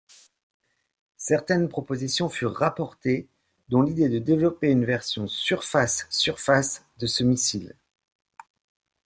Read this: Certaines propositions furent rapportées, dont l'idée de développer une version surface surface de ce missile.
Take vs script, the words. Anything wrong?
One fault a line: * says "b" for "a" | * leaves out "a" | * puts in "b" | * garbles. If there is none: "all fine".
all fine